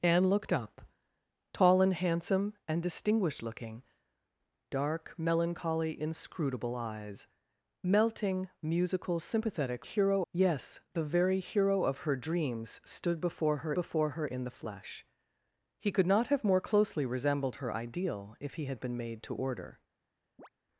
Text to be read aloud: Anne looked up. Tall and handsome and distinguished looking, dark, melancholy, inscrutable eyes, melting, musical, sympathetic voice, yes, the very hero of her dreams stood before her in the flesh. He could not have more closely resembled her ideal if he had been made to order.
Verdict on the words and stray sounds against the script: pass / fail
fail